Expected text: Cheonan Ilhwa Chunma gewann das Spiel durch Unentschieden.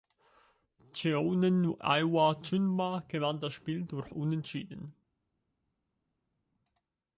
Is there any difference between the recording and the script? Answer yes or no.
no